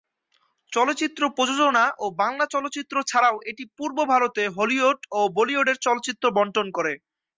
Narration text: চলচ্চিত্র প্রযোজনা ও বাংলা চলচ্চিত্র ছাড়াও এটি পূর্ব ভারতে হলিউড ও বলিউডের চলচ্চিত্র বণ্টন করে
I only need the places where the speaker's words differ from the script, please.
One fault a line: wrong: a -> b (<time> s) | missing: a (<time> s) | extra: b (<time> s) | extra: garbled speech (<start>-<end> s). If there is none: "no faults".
no faults